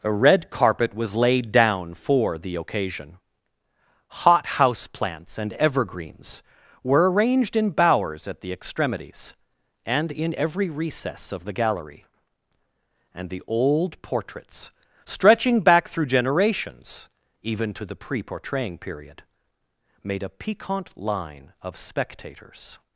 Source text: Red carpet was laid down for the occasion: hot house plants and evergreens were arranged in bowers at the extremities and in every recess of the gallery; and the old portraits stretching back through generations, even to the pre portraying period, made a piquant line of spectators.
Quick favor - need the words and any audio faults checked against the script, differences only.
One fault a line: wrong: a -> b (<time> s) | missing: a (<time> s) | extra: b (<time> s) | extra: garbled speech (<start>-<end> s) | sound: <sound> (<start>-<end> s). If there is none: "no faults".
extra: a (0.0 s)